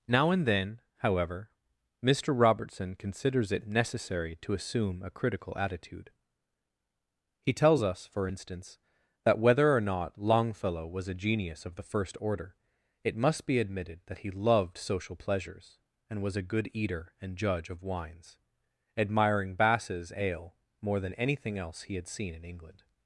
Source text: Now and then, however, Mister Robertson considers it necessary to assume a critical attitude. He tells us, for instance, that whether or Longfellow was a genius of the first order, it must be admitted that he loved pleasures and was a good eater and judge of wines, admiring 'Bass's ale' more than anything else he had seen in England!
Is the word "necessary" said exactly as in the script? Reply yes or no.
yes